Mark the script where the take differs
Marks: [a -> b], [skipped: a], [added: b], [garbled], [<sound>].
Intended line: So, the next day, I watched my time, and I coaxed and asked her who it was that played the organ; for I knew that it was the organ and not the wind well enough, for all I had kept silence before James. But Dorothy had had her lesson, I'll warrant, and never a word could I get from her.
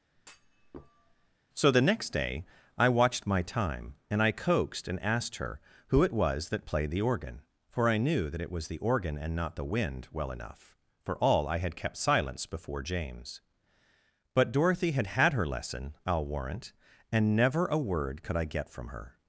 [thud] So, the next day, I watched my time, and I coaxed and asked her who it was that played the organ; for I knew that it was the organ and not the wind well enough, for all I had kept silence before James. But Dorothy had had her lesson, I'll warrant, and never a word could I get from her.